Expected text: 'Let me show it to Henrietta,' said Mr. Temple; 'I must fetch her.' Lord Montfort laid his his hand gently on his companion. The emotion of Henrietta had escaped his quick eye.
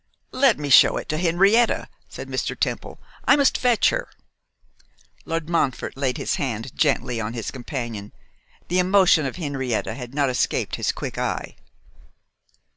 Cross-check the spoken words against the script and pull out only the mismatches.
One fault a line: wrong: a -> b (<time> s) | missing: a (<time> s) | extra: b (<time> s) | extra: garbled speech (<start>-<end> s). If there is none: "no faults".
missing: his (6.4 s)
extra: not (10.1 s)